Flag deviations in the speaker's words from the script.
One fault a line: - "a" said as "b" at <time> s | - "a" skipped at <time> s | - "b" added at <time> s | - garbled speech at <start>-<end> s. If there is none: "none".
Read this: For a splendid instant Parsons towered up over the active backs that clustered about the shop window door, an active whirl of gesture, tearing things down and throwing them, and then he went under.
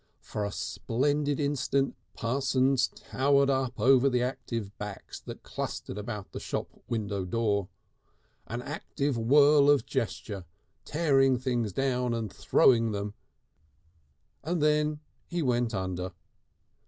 none